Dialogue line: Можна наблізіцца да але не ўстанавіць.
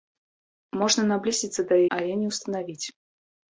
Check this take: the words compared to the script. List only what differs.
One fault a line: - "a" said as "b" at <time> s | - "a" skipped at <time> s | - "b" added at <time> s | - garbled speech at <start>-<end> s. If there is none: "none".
none